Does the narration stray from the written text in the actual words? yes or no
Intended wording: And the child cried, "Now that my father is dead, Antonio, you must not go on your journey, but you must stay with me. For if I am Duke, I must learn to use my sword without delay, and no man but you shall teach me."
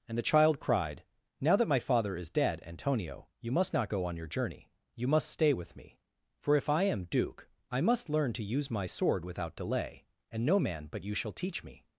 yes